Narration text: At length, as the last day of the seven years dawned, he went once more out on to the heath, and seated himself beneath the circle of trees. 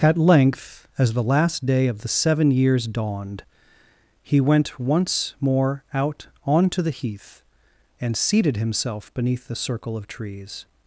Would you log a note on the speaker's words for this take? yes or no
no